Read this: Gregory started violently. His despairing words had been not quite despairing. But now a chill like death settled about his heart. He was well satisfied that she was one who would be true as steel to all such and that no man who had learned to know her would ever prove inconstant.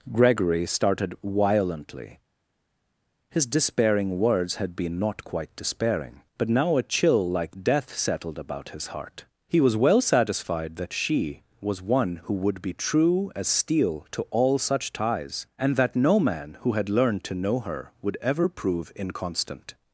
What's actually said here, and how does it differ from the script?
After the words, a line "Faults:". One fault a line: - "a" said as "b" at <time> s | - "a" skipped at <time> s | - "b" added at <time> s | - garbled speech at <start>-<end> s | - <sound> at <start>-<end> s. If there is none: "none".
Gregory started violently. His despairing words had been not quite despairing. But now a chill like death settled about his heart. He was well satisfied that she was one who would be true as steel to all such ties, and that no man who had learned to know her would ever prove inconstant.
Faults:
- "ties" added at 14.9 s